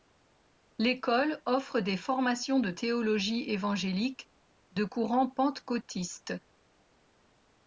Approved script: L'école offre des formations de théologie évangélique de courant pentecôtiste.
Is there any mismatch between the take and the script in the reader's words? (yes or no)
no